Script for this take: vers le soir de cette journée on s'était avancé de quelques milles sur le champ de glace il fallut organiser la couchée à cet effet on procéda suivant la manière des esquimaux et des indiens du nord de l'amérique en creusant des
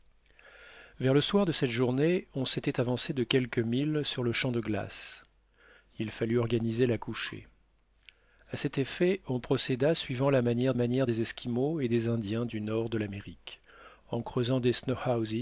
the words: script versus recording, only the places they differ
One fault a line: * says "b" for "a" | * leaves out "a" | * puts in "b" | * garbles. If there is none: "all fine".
* puts in "manière"